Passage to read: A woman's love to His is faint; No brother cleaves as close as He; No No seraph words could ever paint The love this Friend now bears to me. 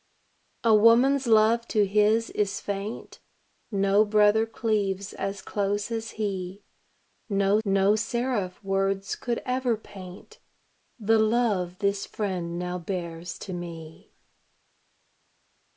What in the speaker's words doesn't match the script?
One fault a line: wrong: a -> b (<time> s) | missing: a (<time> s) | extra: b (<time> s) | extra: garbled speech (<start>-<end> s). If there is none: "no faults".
no faults